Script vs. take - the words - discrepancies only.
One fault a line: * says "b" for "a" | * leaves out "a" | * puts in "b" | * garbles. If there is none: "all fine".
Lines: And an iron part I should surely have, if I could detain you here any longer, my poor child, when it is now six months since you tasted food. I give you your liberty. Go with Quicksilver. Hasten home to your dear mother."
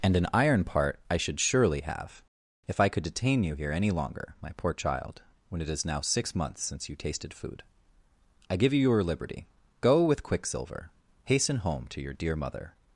all fine